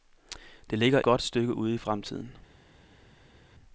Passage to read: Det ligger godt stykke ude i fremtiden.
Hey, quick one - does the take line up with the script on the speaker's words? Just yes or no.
yes